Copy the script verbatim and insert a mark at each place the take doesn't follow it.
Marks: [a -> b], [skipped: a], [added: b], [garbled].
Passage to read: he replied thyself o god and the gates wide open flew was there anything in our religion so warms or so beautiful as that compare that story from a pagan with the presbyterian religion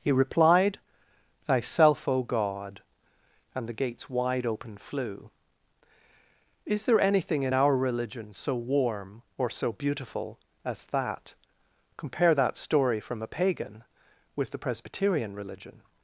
he replied thyself o god and the gates wide open flew [was -> is] there anything in our religion so [warms -> warm] or so beautiful as that compare that story from a pagan with the presbyterian religion